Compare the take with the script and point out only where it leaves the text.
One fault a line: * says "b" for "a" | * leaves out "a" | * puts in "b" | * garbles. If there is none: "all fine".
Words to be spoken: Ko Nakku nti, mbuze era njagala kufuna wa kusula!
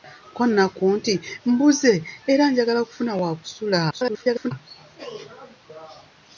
* garbles